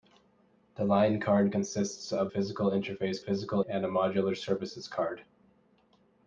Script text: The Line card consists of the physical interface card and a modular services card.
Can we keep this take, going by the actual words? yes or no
no